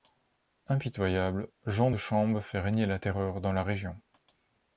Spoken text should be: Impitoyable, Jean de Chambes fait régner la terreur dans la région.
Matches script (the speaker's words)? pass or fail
pass